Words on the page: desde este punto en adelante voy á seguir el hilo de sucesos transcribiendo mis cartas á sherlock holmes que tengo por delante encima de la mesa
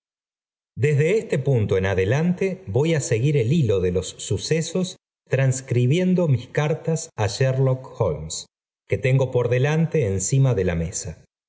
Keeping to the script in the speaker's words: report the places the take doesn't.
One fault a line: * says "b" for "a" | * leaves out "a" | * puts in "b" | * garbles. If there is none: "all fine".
* puts in "los"